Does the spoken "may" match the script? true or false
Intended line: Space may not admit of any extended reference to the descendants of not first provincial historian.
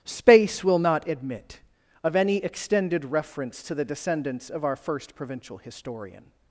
false